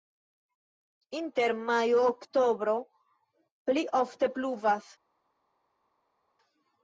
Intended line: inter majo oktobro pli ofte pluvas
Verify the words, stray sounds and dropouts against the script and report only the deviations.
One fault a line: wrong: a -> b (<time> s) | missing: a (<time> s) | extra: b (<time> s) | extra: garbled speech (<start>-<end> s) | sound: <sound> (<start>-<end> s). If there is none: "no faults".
no faults